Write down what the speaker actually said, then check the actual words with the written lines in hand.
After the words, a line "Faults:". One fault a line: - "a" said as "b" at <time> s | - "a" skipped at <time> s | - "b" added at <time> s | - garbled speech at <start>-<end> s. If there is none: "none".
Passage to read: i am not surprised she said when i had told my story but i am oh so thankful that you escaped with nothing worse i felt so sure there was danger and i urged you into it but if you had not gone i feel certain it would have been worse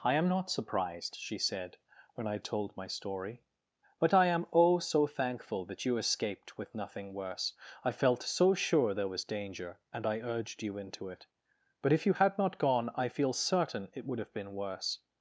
i am not surprised she said when i told my story but i am oh so thankful that you escaped with nothing worse i felt so sure there was danger and i urged you into it but if you had not gone i feel certain it would have been worse
Faults:
- "had" skipped at 2.4 s